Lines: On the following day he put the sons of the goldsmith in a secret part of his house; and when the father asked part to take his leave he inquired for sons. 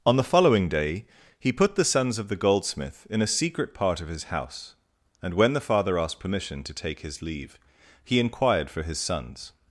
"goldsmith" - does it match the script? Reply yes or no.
yes